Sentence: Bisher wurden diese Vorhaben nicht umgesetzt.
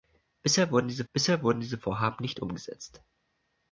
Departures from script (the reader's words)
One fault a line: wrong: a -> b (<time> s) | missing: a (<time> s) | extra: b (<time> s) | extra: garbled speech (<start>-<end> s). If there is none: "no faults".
extra: bisher wurden diese (1.1 s)